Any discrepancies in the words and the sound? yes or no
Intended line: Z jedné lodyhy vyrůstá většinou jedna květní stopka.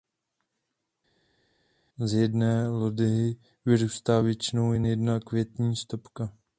yes